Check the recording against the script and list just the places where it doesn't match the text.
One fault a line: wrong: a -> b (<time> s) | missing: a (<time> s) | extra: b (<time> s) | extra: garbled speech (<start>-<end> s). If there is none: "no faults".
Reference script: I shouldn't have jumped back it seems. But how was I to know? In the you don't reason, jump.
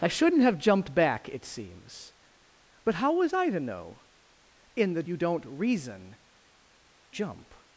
no faults